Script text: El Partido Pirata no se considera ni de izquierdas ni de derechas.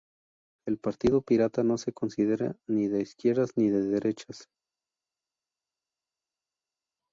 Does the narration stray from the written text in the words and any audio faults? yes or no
no